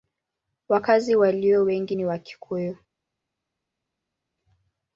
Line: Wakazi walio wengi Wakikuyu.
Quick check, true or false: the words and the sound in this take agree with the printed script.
false